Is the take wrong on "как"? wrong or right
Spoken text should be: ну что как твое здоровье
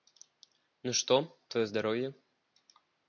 wrong